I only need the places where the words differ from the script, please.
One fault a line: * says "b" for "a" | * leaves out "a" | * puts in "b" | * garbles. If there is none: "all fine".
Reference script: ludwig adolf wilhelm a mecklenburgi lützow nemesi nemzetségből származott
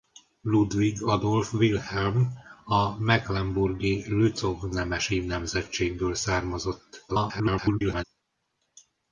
* garbles